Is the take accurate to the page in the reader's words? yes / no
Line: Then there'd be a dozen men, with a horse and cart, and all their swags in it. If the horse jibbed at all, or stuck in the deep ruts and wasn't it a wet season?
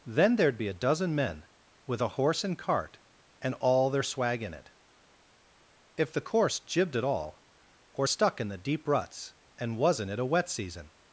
no